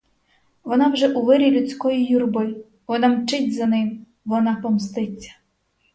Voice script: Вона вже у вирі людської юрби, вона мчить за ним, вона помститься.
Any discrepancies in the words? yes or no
no